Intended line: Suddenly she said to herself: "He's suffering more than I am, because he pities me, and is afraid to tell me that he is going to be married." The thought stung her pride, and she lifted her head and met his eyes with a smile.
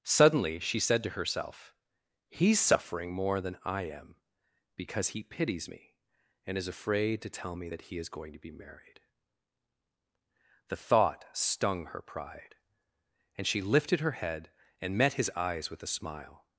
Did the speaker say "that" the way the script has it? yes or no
yes